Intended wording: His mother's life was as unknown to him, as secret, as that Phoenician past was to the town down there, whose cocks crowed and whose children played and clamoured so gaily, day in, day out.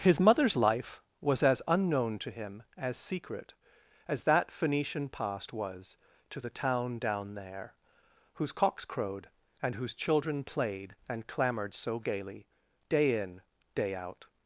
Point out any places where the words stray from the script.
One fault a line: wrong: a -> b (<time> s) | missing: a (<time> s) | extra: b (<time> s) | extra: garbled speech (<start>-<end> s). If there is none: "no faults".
no faults